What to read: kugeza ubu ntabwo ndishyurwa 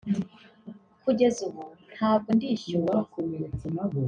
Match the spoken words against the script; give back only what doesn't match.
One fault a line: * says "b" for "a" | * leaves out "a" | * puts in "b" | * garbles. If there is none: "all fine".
all fine